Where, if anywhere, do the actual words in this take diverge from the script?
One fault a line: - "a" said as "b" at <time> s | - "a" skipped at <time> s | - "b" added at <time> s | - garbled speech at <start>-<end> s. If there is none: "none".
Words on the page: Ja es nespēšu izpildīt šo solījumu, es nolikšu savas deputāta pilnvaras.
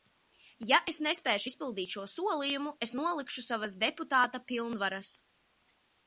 none